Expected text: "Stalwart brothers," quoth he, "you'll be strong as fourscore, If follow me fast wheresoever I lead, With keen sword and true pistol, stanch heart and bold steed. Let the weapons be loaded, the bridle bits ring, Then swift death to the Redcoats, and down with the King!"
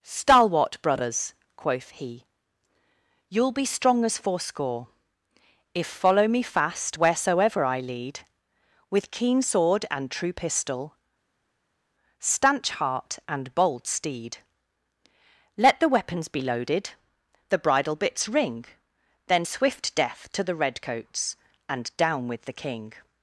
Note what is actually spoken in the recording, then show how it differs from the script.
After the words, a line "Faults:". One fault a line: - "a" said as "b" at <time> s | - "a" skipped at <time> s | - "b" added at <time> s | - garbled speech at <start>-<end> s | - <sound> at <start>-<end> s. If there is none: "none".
"Stalwart brothers," quoth he, "you'll be strong as fourscore, If follow me fast wheresoever I lead, With keen sword and true pistol, stanch heart and bold steed. Let the weapons be loaded, the bridle bits ring, Then swift death to the Redcoats, and down with the King!"
Faults:
none